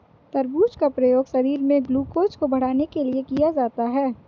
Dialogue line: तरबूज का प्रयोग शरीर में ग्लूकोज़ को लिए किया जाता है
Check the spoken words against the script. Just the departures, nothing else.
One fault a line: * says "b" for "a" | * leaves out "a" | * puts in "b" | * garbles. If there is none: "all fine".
* puts in "बढ़ाने के"